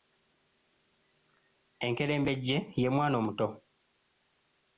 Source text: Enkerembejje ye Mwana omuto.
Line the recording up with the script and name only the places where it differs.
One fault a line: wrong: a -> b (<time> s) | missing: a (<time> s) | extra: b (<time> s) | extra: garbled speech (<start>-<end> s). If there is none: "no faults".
no faults